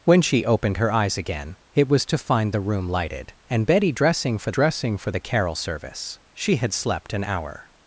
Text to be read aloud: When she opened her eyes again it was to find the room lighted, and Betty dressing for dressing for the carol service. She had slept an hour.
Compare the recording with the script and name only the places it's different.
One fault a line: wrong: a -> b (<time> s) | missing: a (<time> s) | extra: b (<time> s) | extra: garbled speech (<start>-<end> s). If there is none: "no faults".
no faults